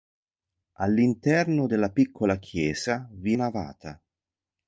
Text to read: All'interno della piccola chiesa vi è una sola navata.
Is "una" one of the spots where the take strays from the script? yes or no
yes